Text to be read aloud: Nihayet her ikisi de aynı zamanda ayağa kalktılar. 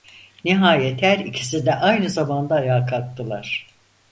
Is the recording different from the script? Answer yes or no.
no